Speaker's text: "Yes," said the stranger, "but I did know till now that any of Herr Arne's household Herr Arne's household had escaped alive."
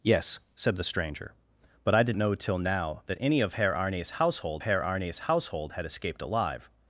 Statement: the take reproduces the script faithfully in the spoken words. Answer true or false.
true